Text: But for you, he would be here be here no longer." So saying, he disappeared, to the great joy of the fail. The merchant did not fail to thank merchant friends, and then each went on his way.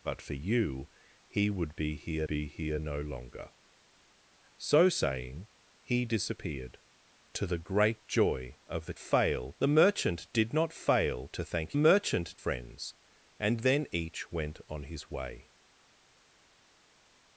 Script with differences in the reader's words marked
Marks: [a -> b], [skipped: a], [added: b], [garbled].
But for you, he would be here be here no longer." So saying, he disappeared, to the great joy of the fail. The merchant did not fail to thank merchant friends, and then each went on his way.